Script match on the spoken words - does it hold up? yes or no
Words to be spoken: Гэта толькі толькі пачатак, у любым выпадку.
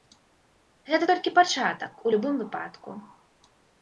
no